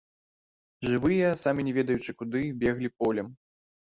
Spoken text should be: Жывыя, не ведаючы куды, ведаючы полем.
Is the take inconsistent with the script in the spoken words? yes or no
yes